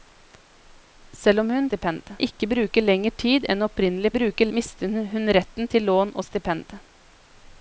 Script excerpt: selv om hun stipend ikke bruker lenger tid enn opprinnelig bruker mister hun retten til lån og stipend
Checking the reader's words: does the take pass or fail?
pass